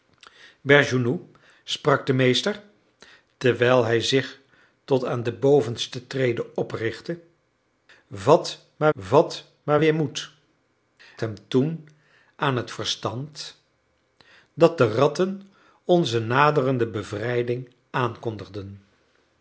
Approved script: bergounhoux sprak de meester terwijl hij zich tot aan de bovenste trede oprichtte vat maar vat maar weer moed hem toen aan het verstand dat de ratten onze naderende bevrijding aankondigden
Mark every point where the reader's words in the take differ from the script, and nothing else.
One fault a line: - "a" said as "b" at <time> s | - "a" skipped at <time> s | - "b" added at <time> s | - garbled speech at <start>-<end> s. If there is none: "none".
none